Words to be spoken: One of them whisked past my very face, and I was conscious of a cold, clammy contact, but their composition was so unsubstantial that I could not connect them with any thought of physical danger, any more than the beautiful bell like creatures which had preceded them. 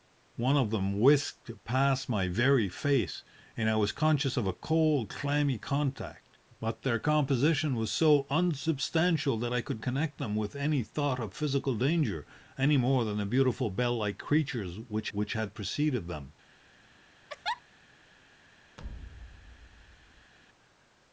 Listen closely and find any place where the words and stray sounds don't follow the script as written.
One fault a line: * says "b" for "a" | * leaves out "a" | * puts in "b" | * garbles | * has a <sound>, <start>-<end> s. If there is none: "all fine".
* leaves out "not"
* puts in "which"
* has a laugh, 17.3-17.6 s
* has a thud, 18.8-20.3 s